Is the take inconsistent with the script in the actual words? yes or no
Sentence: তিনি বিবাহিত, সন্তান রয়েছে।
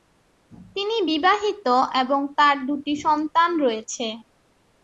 yes